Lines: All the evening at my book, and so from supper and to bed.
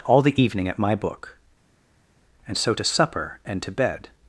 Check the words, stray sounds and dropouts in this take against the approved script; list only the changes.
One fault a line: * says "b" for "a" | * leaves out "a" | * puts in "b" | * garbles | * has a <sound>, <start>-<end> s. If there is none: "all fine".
* says "to" for "from"